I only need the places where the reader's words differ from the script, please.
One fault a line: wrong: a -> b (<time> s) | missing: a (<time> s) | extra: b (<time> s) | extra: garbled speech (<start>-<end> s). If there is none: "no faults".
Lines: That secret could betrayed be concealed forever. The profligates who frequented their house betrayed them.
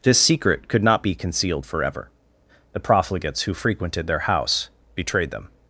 wrong: That -> This (0.0 s)
wrong: betrayed -> not (0.8 s)